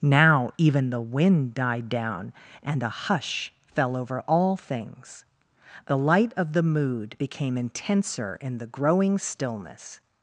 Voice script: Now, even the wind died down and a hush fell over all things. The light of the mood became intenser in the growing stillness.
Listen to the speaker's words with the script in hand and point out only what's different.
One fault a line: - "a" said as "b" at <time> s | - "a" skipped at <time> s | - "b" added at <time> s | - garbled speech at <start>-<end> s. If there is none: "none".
none